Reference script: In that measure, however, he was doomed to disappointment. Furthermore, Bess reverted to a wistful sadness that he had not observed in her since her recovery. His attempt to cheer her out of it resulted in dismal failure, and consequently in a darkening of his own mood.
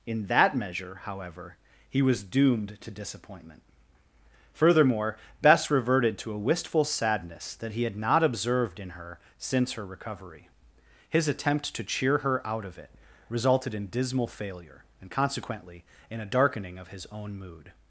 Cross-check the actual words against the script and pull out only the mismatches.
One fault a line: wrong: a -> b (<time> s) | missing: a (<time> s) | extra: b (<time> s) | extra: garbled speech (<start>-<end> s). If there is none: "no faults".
no faults